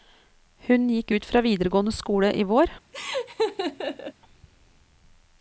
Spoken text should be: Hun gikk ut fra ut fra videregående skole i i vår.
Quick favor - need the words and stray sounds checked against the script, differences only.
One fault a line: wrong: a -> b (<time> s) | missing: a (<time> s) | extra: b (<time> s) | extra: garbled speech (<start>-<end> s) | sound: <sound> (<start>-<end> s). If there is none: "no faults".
missing: ut fra (1.4 s)
missing: i (2.4 s)
sound: laugh (2.9-4.1 s)